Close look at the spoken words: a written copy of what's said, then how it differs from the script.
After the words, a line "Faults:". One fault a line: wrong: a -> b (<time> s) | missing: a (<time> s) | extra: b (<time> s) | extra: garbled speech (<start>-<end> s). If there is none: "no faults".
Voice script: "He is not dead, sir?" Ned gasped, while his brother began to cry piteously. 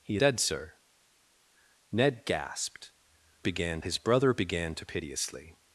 "He dead, sir?" Ned gasped, began his brother began to piteously.
Faults:
missing: is not (0.2 s)
wrong: while -> began (3.4 s)
missing: cry (4.9 s)